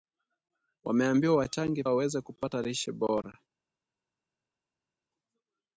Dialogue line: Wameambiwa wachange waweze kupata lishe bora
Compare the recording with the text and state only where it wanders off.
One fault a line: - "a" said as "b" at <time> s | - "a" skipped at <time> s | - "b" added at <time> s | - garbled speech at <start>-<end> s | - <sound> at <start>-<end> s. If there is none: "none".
none